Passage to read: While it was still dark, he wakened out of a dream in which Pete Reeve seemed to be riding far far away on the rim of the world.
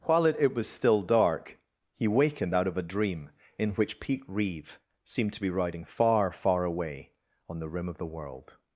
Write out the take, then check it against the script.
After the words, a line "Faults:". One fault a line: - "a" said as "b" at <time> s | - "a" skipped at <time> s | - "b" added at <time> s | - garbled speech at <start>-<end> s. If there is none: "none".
While it it was still dark, he wakened out of a dream in which Pete Reeve seemed to be riding far far away on the rim of the world.
Faults:
- "it" added at 0.4 s